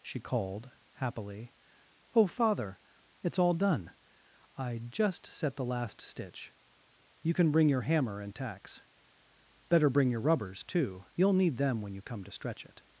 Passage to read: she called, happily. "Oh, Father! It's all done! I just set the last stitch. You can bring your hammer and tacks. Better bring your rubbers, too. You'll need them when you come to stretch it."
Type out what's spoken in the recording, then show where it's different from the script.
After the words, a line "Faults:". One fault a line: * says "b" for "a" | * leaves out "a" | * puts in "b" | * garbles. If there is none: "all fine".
she called, happily. "Oh, Father! It's all done! I just set the last stitch. You can bring your hammer and tacks. Better bring your rubbers, too. You'll need them when you come to stretch it."
Faults:
all fine